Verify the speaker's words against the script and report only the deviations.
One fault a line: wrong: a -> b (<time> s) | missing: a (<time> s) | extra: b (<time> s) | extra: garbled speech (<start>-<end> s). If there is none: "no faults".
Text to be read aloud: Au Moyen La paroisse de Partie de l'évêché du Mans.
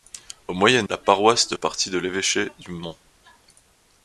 no faults